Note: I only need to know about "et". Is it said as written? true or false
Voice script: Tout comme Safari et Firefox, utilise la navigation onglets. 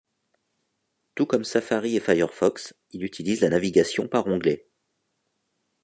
true